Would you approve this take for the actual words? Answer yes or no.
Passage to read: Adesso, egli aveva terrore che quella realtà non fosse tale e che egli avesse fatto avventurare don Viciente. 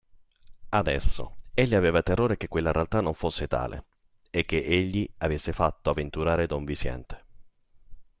yes